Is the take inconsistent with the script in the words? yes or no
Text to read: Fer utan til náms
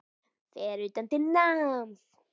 no